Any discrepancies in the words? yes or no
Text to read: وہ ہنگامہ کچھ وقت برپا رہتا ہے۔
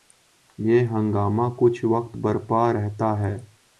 yes